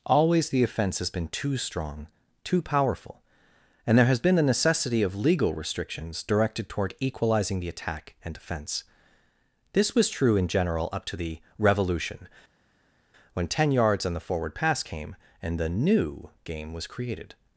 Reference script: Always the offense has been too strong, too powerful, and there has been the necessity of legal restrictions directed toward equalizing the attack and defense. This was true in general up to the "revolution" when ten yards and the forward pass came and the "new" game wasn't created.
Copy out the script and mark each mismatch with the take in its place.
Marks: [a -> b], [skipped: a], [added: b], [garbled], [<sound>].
Always the offense has been too strong, too powerful, and there has been the necessity of legal restrictions directed toward equalizing the attack and defense. This was true in general up to the "revolution" when ten yards and the forward pass came and the "new" game [wasn't -> was] created.